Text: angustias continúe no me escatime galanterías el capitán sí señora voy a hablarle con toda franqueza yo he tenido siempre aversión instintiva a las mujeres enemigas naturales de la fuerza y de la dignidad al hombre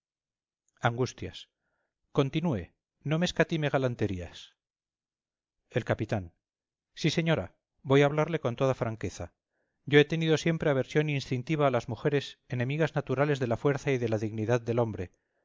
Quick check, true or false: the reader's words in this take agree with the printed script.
false